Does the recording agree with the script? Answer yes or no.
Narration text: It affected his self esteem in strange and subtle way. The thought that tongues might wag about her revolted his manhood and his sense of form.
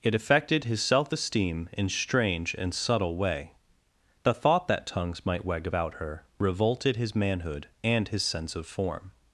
yes